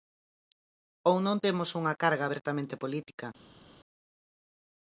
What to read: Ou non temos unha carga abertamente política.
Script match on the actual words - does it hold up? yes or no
yes